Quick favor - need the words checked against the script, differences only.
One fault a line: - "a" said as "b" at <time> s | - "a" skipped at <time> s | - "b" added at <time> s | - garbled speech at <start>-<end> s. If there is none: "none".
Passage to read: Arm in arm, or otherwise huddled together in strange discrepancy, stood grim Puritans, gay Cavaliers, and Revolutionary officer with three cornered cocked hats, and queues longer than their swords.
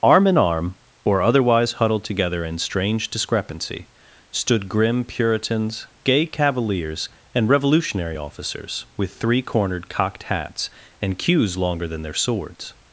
- "officer" said as "officers" at 8.1 s